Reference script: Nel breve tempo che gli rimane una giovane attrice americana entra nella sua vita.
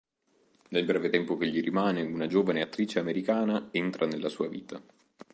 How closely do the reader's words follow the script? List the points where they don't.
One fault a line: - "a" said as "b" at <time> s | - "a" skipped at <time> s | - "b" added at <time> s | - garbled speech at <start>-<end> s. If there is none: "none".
none